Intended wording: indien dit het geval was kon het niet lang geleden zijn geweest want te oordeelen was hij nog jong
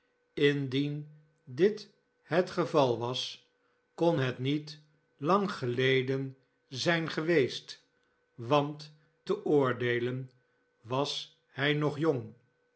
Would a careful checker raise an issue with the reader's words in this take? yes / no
no